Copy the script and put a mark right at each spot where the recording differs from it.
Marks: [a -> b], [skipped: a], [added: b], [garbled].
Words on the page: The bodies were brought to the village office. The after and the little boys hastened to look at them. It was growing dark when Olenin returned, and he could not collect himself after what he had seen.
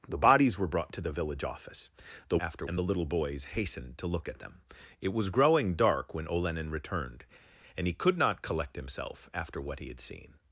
The bodies were brought to the village office. The after and the little boys hastened to look at them. It was growing dark when Olenin returned, and he could not collect himself after what he had seen.